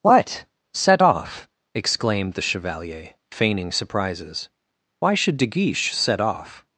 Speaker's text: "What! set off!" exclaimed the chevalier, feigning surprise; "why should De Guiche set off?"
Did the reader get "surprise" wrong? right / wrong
wrong